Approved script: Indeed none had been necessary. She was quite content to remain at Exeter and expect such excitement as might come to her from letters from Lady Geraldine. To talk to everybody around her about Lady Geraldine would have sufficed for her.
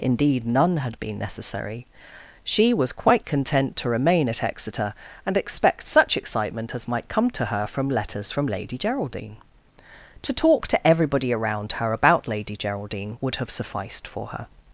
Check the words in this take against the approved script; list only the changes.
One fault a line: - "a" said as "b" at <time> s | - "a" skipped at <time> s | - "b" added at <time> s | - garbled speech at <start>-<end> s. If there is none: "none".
none